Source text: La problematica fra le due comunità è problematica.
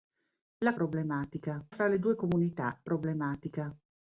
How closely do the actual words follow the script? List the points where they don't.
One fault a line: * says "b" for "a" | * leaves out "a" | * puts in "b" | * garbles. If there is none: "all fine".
all fine